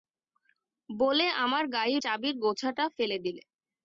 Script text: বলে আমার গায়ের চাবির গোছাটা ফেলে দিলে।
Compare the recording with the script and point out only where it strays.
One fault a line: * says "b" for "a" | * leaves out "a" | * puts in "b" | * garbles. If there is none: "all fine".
all fine